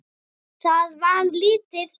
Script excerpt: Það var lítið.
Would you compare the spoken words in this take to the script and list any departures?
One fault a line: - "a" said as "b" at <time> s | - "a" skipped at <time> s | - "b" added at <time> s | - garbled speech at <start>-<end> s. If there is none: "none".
none